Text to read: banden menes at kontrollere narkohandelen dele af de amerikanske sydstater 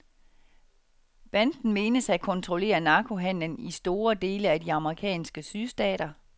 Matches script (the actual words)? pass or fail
fail